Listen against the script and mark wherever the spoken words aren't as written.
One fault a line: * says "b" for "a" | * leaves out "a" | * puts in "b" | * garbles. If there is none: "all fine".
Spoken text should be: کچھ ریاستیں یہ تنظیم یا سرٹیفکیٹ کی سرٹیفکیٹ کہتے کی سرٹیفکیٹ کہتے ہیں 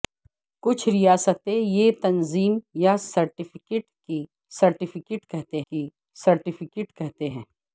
all fine